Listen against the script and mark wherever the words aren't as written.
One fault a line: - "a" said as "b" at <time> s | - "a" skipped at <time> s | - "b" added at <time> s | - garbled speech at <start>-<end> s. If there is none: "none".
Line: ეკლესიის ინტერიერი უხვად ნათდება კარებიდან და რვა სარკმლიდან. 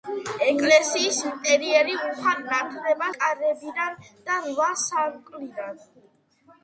none